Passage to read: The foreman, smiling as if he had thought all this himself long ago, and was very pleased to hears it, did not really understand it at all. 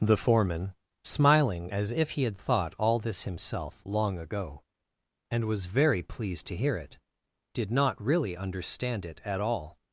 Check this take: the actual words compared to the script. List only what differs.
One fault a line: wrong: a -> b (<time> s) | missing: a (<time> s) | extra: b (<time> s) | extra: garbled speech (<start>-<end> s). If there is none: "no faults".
wrong: hears -> hear (6.6 s)